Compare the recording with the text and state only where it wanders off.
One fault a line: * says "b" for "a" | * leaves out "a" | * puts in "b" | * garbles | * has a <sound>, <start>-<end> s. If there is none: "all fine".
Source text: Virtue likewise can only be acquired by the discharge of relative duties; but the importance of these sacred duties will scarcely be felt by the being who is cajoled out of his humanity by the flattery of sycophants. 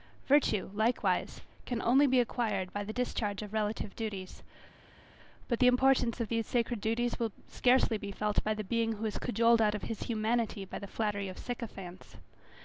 all fine